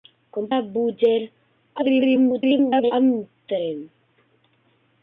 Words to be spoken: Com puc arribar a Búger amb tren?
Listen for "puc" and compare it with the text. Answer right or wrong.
wrong